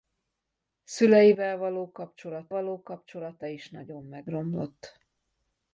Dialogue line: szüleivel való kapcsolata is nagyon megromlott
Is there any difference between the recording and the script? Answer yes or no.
yes